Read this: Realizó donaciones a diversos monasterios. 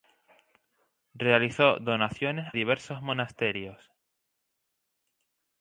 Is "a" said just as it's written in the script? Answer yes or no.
no